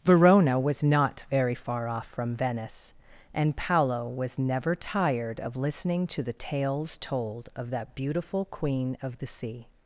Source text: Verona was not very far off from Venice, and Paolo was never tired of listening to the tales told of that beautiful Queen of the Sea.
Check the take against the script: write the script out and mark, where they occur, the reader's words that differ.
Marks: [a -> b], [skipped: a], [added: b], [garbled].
Verona was not very far off from Venice, and Paolo was never tired of listening to the tales told of that beautiful Queen of the Sea.